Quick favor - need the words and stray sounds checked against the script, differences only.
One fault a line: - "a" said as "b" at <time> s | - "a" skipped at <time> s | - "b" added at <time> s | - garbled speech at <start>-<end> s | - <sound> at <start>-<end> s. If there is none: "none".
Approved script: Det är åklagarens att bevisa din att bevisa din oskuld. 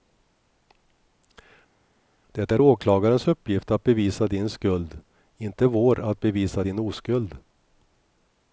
- "uppgift" added at 3.3 s
- "skuld inte vår" added at 4.5 s